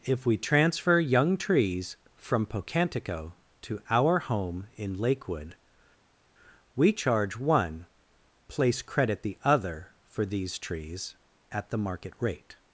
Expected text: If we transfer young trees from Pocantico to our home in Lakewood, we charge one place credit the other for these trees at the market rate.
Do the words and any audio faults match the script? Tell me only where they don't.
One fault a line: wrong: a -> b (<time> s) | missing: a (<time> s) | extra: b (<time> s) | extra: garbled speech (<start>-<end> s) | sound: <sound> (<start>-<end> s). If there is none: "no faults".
no faults